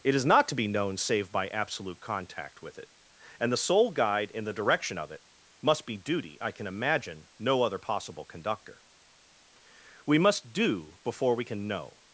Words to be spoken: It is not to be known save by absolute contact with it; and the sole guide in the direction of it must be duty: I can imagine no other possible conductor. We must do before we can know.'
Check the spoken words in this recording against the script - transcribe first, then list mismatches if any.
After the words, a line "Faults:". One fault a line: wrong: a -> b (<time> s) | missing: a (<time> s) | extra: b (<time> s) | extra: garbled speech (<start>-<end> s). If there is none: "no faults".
It is not to be known save by absolute contact with it; and the sole guide in the direction of it must be duty: I can imagine no other possible conductor. We must do before we can know.'
Faults:
no faults